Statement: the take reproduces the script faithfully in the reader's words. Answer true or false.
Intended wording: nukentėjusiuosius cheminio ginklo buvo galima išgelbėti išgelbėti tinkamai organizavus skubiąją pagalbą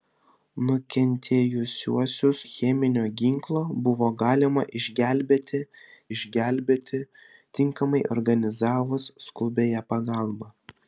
true